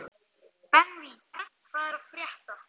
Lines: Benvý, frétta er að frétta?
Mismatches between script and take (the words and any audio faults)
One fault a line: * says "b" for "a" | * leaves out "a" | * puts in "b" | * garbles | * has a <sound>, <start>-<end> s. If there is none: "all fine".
* has a laugh, 1.3-1.5 s
* says "hvað" for "frétta"